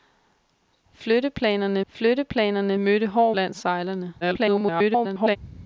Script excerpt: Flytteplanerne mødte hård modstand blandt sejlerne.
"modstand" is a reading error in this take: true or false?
true